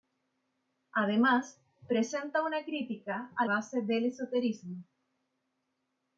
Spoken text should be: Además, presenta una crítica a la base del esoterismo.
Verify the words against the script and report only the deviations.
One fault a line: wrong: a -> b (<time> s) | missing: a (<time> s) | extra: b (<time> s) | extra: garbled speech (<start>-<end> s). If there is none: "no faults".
missing: la (3.5 s)